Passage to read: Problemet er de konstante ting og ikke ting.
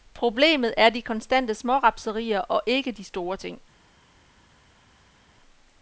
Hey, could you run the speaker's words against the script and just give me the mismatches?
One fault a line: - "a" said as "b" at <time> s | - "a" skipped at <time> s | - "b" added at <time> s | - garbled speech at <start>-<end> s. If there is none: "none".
- "ting" said as "smårapserier" at 1.5 s
- "de store" added at 2.9 s